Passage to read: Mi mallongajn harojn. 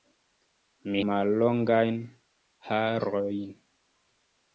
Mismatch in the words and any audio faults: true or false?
false